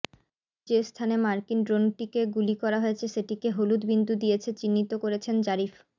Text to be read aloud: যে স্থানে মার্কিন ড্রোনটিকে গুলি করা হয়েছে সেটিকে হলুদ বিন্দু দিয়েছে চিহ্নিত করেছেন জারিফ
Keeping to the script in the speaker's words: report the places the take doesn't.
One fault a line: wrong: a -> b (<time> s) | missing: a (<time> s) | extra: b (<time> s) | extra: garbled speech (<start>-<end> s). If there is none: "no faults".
no faults